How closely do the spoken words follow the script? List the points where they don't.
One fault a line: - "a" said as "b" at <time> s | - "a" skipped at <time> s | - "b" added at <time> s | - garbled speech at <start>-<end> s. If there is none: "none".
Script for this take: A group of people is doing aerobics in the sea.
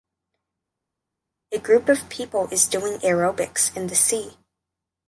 none